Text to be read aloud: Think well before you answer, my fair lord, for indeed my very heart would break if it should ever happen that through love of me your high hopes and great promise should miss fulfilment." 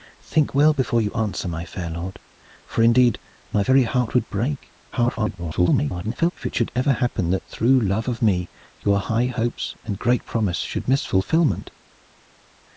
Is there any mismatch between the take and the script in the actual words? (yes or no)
yes